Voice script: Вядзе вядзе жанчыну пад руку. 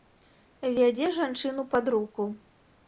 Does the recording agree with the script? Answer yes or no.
no